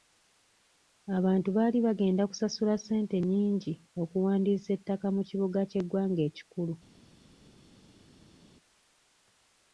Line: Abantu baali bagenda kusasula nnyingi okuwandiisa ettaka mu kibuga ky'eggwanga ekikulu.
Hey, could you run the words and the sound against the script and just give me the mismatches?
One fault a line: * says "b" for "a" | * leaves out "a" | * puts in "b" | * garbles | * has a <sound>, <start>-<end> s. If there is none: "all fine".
* puts in "ssente"